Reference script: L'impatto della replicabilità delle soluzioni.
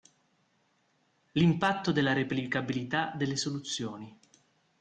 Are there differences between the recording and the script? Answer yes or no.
no